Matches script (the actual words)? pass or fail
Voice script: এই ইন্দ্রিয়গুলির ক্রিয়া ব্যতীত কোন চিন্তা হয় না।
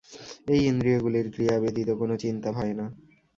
pass